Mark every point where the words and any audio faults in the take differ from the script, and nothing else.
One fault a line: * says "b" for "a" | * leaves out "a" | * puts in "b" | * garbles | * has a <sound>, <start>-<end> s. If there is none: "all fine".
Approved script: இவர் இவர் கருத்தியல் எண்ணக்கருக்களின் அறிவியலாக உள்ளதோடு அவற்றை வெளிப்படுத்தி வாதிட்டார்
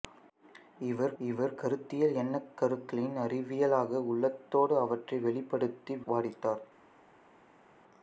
all fine